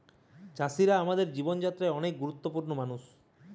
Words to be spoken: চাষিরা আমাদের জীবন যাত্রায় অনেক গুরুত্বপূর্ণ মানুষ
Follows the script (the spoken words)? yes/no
yes